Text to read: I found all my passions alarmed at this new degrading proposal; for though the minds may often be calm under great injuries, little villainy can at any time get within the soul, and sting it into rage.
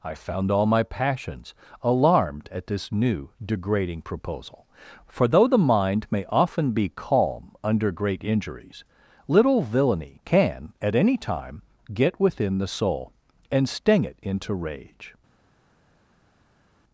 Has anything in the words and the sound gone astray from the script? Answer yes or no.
yes